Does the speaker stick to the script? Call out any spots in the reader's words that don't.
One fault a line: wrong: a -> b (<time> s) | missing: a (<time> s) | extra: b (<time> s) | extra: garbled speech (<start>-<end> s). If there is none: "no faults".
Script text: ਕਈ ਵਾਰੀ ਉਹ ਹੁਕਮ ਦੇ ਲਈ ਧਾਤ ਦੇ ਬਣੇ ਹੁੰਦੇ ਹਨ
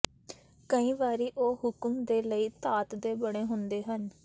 no faults